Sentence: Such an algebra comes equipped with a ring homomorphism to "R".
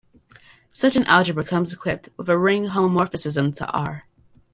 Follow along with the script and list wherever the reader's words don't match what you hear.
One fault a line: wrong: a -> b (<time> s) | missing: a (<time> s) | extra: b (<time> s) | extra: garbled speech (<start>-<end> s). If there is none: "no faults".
no faults